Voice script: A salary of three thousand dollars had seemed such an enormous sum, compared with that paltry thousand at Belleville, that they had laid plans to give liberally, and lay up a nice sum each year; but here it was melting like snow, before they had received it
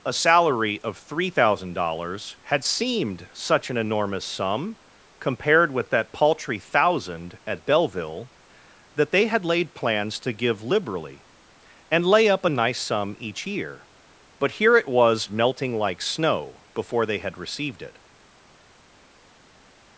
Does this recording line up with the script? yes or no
yes